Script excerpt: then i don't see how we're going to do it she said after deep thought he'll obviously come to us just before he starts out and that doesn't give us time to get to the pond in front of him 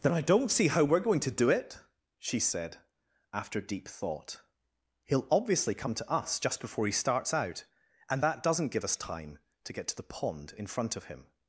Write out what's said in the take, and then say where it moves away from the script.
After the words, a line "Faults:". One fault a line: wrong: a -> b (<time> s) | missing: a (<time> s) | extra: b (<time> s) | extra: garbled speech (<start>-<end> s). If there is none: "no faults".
then i don't see how we're going to do it she said after deep thought he'll obviously come to us just before he starts out and that doesn't give us time to get to the pond in front of him
Faults:
no faults